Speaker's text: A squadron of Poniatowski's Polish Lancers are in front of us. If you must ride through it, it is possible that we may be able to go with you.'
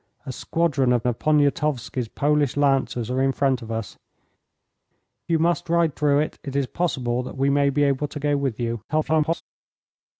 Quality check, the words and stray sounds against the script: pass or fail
fail